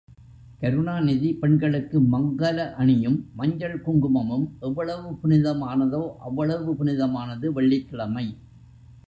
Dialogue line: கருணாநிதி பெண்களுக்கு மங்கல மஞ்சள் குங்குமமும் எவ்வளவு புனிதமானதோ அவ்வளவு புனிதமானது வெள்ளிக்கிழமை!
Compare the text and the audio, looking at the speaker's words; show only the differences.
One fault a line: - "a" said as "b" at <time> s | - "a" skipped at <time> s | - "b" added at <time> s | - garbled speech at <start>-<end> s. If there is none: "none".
- "அணியும்" added at 2.8 s